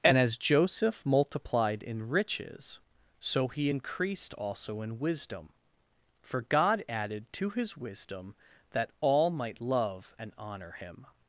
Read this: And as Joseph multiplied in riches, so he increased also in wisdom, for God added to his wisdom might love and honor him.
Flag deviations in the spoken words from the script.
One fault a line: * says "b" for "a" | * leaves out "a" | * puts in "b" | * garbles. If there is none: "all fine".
* puts in "that all"